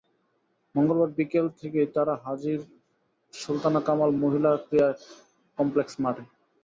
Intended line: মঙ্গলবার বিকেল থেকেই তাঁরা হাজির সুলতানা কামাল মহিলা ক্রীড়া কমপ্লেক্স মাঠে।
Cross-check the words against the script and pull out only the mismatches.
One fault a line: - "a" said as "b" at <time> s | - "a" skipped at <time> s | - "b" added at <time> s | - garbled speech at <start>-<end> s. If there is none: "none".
none